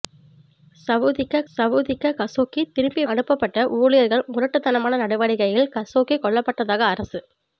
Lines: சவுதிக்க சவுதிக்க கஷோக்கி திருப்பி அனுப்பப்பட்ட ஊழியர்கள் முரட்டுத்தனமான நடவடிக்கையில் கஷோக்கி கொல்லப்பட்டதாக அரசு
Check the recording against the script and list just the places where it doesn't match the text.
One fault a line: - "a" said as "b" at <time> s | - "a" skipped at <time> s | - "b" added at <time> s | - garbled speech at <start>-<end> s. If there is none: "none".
none